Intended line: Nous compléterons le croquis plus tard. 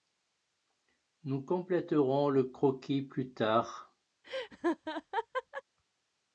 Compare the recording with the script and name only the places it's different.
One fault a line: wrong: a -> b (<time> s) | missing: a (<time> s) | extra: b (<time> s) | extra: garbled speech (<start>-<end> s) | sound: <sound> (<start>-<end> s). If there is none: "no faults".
sound: laugh (4.2-5.6 s)